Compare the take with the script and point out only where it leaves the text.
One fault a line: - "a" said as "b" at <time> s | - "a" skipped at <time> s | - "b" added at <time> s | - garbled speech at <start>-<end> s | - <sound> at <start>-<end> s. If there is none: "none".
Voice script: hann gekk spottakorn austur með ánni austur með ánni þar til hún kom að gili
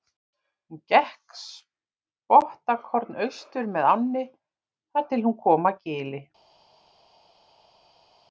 - "hann" said as "hún" at 0.7 s
- "austur með ánni" skipped at 4.3 s